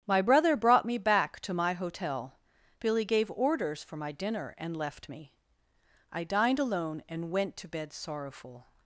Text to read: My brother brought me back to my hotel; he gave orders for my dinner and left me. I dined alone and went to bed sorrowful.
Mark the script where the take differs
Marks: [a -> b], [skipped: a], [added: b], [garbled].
My brother brought me back to my hotel; [he -> billy] gave orders for my dinner and left me. I dined alone and went to bed sorrowful.